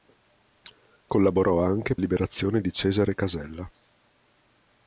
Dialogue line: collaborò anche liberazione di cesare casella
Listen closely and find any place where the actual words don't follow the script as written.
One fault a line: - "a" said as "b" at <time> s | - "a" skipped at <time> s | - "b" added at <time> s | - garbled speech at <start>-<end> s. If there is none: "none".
none